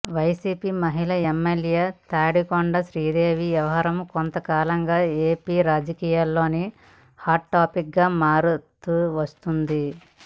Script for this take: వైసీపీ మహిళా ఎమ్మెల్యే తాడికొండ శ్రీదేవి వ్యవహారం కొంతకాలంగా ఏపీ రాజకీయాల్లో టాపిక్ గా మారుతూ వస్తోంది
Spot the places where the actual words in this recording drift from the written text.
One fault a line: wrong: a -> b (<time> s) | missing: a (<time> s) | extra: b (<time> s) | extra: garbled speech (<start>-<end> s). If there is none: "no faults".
extra: హాట్ (7.2 s)